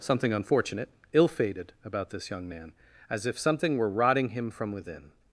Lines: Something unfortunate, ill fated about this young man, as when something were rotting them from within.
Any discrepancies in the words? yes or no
yes